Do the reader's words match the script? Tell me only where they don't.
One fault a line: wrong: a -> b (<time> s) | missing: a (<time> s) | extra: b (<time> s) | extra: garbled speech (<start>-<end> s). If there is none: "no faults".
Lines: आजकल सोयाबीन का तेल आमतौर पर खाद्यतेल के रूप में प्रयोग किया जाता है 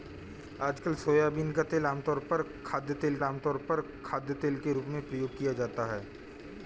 extra: आमतौर पर खाद्यतेल (3.2 s)